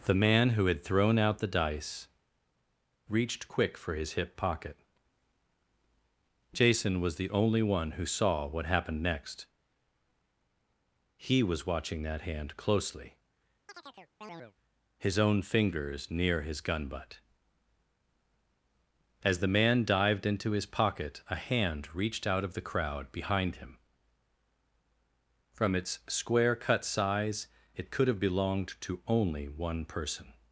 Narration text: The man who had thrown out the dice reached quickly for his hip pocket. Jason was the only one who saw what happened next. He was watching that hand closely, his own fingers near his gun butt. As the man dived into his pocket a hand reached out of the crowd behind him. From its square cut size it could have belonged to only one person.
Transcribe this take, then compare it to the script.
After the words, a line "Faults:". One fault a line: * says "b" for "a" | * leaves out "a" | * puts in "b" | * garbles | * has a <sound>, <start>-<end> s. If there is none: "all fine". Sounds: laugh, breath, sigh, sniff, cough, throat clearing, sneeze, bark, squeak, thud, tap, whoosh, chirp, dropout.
The man who had thrown out the dice reached quick for his hip pocket. Jason was the only one who saw what happened next. He was watching that hand closely, his own fingers near his gun butt. As the man dived into his pocket a hand reached out of the crowd behind him. From its square cut size it could have belonged to only one person.
Faults:
* says "quick" for "quickly"
* has a chirp, 13.7-14.5 s